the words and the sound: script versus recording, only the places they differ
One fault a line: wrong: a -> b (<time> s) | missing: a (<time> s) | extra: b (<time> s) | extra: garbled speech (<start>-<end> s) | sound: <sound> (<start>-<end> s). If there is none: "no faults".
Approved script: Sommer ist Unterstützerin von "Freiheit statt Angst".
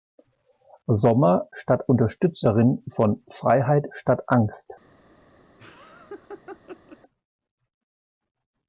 wrong: ist -> statt (1.5 s)
sound: laugh (5.6-7.0 s)